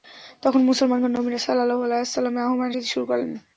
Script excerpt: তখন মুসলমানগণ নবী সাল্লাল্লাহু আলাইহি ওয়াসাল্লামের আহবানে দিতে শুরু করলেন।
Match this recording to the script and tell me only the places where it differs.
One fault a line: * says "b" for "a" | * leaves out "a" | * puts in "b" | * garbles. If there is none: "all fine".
all fine